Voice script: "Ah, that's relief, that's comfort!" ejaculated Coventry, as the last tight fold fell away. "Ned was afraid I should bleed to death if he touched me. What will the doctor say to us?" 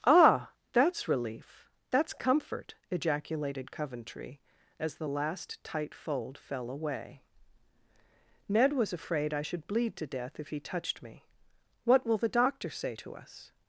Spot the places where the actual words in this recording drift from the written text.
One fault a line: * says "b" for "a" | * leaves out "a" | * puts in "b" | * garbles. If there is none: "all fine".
all fine